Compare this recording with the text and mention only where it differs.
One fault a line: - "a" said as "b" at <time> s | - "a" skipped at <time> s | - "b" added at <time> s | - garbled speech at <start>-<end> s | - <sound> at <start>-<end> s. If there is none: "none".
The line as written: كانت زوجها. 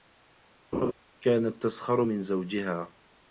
- laugh at 0.7-0.9 s
- "تسخر من" added at 1.6 s